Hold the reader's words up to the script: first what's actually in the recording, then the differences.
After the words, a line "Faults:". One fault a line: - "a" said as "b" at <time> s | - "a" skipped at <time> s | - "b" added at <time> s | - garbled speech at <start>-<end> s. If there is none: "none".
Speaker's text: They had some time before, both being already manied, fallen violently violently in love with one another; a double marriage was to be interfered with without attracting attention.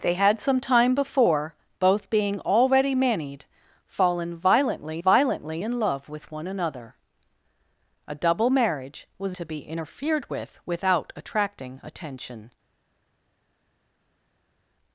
They had some time before, both being already manied, fallen violently violently in love with one another; a double marriage was to be interfered with without attracting attention.
Faults:
none